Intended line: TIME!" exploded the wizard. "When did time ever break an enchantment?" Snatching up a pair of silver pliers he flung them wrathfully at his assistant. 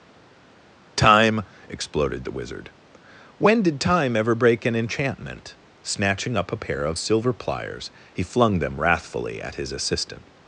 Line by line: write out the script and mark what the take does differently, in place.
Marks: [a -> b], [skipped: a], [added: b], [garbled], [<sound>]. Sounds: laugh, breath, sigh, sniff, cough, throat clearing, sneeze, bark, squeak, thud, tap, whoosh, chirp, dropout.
TIME!" exploded the wizard. "When did time ever break an enchantment?" Snatching up a pair of silver pliers he flung them wrathfully at his assistant.